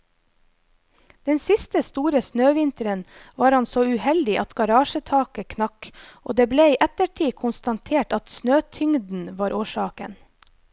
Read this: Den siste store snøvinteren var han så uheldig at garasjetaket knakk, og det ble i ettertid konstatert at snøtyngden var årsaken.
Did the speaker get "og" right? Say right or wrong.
right